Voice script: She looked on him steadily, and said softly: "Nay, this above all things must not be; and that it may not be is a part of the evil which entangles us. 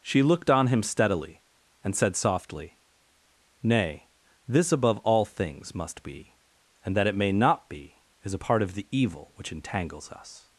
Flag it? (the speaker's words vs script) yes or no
yes